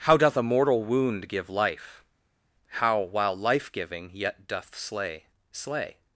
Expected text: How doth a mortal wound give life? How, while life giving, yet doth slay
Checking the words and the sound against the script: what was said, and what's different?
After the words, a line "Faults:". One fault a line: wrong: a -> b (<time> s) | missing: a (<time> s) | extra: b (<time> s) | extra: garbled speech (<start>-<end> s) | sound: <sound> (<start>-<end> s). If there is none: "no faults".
How doth a mortal wound give life? How, while life giving, yet doth slay slay
Faults:
extra: slay (5.5 s)